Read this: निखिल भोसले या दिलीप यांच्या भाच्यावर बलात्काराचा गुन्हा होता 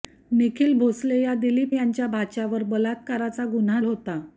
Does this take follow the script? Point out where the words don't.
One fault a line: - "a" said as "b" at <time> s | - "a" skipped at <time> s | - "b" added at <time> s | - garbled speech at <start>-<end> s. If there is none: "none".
none